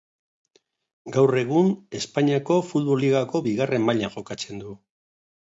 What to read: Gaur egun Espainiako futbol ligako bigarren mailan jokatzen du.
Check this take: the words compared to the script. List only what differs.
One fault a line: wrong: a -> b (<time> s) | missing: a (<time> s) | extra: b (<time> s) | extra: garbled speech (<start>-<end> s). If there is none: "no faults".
no faults